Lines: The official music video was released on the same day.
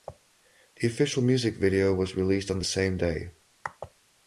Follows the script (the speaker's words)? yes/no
yes